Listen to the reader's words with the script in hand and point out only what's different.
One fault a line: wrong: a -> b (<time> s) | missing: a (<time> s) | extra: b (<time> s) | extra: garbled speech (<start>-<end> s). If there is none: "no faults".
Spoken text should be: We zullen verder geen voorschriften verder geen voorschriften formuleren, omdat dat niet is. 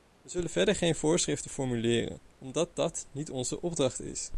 missing: verder geen voorschriften (1.5 s)
extra: onze opdracht (3.3 s)